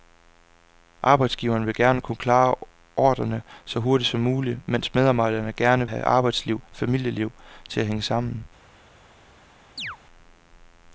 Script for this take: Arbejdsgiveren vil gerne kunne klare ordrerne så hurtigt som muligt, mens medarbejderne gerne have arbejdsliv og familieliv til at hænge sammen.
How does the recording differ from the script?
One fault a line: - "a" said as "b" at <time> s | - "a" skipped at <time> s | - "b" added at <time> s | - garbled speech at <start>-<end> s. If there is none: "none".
none